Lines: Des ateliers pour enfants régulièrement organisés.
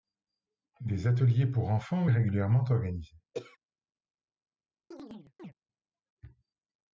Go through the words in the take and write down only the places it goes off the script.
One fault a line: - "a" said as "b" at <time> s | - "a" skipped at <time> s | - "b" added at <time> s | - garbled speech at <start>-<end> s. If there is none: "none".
none